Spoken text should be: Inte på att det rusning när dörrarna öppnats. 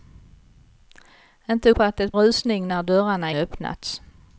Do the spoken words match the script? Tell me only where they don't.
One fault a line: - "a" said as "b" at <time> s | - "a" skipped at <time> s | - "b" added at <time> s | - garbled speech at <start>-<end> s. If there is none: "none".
none